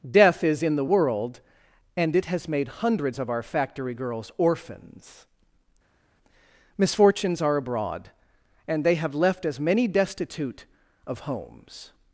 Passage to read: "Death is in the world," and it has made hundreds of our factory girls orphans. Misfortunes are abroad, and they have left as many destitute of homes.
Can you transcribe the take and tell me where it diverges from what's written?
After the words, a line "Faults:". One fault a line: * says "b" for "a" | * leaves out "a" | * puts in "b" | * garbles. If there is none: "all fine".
"Death is in the world," and it has made hundreds of our factory girls orphans. Misfortunes are abroad, and they have left as many destitute of homes.
Faults:
all fine